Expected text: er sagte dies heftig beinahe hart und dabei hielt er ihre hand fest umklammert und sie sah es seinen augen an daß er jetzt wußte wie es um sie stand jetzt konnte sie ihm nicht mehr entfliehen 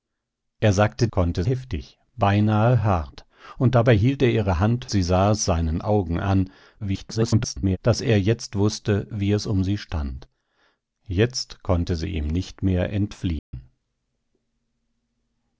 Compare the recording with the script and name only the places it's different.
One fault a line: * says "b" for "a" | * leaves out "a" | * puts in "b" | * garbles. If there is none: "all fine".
* says "konnte" for "dies"
* leaves out "fest umklammert und"
* garbles